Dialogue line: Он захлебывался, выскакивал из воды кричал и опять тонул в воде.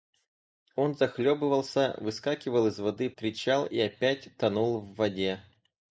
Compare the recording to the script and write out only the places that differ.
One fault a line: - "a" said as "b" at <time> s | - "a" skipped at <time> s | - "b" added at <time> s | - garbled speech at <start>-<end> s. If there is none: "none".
none